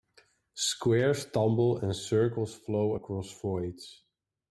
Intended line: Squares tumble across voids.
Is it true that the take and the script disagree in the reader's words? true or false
true